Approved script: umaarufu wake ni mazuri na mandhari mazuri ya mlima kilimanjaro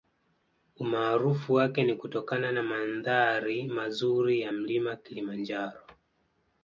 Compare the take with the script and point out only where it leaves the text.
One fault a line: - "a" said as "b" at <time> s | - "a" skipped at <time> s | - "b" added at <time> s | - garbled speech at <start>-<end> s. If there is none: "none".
- "mazuri" said as "kutokana" at 1.9 s